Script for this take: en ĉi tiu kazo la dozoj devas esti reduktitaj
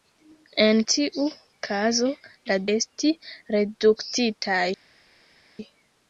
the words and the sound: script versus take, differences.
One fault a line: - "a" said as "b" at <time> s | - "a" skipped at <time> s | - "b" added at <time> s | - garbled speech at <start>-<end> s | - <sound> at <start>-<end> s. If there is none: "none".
- "ĉi" skipped at 0.8 s
- "dozoj devas" skipped at 2.6 s